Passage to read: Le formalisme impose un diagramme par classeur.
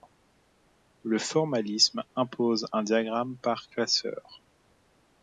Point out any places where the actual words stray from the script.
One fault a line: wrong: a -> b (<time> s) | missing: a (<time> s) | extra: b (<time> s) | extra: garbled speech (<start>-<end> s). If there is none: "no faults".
no faults